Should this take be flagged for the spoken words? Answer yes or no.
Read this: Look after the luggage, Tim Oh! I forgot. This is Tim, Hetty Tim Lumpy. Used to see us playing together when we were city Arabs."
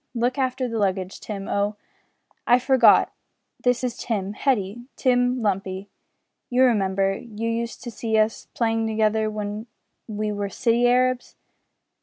yes